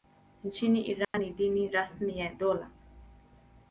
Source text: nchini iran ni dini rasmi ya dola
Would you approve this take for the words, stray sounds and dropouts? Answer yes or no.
no